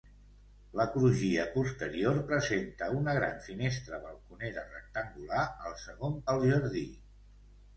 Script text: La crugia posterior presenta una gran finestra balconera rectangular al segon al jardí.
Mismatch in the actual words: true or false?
false